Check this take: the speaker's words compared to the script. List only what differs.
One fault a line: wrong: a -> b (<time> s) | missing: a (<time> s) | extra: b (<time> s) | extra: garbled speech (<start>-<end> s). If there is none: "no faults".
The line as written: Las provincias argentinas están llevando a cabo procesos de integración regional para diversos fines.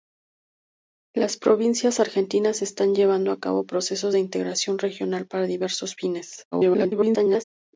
extra: garbled speech (6.5-7.4 s)